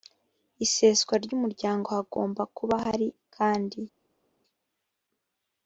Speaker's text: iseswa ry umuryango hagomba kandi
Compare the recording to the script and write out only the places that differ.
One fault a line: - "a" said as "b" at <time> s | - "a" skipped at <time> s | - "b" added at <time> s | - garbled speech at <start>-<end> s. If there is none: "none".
- "kuba hari" added at 2.6 s